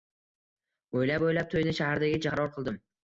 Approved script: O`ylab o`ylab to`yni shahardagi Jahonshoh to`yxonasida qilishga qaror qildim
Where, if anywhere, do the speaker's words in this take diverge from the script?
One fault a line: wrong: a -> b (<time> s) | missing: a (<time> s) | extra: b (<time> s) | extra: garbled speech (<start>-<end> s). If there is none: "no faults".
missing: Jahonshoh to`yxonasida qilishga (2.2 s)